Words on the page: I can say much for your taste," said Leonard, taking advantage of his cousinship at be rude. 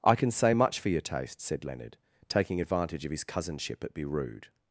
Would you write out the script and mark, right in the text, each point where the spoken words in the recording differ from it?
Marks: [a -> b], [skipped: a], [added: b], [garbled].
I can say much for your taste," said Leonard, taking advantage of his cousinship at be rude.